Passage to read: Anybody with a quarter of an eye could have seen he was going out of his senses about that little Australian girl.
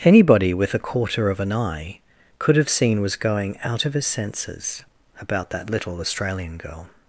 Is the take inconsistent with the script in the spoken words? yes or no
yes